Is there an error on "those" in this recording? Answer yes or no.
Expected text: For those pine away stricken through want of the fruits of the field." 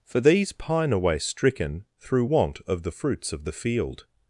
yes